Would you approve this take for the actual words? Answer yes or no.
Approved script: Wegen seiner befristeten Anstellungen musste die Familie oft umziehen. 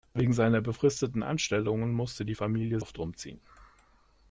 yes